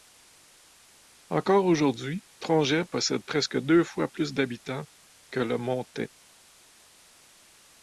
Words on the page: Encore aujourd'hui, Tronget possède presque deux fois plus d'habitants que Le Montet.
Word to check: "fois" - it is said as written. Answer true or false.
true